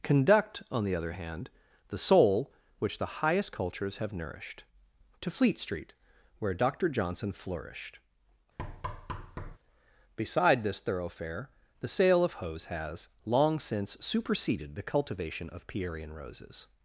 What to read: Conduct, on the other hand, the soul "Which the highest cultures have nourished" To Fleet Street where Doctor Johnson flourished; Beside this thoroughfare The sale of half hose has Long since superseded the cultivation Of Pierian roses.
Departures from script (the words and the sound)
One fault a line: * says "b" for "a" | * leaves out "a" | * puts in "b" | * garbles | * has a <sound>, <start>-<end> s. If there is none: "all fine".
* has a thud, 8.6-9.6 s
* leaves out "half"